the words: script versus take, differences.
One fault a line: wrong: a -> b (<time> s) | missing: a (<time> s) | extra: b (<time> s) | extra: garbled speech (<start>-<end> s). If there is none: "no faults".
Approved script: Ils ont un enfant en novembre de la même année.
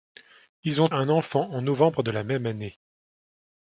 no faults